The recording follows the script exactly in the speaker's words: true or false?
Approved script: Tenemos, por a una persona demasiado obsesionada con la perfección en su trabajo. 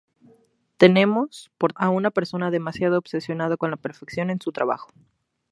true